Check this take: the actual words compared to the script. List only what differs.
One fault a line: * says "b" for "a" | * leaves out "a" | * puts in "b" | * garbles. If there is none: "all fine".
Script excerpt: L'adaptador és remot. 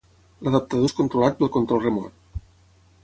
* puts in "controlat pel control"